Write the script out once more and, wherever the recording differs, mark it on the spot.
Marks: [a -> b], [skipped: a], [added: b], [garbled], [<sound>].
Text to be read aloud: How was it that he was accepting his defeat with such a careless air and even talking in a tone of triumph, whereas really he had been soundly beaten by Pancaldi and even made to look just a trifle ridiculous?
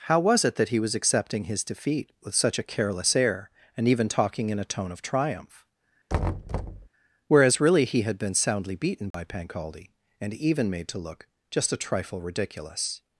How was it that he was accepting his defeat with such a careless air and even talking in a tone of triumph, [thud] whereas really he had been soundly beaten by [dropout] Pancaldi and even made to look just a trifle ridiculous?